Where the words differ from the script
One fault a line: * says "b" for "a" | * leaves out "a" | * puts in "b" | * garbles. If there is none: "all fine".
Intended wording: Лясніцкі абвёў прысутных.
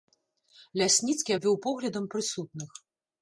* puts in "поглядам"